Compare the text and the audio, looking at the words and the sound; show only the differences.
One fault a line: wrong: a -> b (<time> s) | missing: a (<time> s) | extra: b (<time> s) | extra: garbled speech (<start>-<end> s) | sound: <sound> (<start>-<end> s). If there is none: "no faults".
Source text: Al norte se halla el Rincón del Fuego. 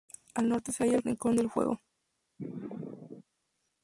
sound: sneeze (2.4-3.2 s)